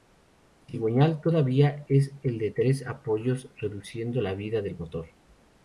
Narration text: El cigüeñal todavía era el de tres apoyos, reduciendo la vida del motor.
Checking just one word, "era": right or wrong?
wrong